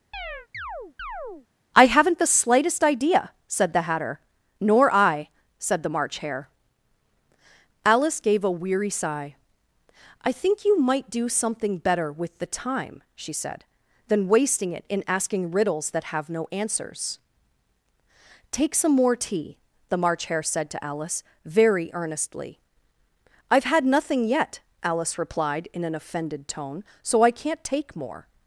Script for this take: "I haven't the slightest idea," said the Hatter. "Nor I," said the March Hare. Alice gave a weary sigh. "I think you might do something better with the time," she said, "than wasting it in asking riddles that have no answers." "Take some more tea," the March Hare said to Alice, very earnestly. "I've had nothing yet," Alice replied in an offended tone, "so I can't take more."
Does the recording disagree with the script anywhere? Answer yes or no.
no